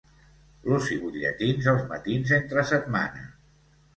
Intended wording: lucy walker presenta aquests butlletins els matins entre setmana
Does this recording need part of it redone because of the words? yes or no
yes